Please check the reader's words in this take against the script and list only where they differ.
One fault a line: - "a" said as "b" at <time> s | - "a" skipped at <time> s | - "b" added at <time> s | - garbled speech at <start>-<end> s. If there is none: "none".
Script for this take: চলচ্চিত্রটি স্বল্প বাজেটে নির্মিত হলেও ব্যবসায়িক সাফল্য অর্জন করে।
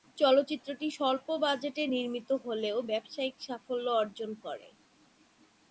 none